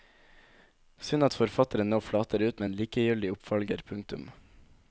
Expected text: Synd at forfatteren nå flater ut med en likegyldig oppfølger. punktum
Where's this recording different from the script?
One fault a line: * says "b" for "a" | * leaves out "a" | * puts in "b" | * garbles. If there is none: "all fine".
all fine